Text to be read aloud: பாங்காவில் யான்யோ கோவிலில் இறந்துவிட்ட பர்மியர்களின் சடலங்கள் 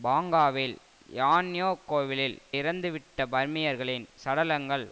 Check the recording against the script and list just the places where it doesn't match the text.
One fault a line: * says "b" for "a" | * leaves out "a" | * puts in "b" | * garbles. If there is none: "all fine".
all fine